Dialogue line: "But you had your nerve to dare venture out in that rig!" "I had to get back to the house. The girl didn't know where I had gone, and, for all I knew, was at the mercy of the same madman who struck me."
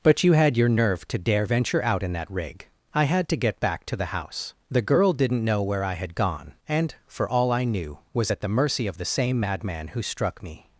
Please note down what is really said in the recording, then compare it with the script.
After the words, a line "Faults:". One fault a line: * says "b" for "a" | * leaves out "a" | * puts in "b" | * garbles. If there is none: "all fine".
"But you had your nerve to dare venture out in that rig!" "I had to get back to the house. The girl didn't know where I had gone, and, for all I knew, was at the mercy of the same madman who struck me."
Faults:
all fine